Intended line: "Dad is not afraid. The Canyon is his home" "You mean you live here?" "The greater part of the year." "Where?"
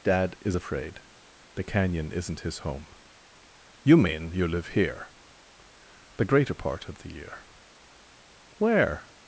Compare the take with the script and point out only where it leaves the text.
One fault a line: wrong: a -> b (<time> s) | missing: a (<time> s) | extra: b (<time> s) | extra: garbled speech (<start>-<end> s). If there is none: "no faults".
missing: not (0.6 s)
wrong: is -> isn't (2.1 s)